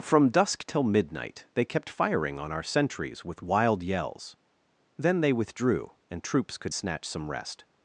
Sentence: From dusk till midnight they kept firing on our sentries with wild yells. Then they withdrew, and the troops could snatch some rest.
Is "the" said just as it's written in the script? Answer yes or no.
no